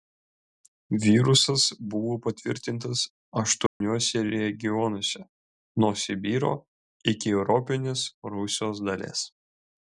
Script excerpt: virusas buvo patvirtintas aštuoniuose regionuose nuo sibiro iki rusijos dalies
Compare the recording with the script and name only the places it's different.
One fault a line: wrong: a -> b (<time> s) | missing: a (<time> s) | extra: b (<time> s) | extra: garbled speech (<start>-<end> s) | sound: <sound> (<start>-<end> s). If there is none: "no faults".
sound: dropout (3.7-3.8 s)
extra: europinės (7.4 s)